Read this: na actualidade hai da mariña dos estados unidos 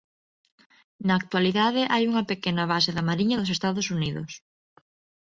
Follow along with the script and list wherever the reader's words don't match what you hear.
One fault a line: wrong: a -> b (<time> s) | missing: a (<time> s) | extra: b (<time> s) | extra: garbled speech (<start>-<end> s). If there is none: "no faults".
extra: unha pequena base (2.1 s)